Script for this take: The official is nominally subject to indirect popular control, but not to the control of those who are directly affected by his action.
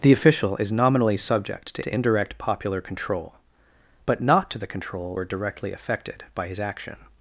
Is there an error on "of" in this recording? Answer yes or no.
yes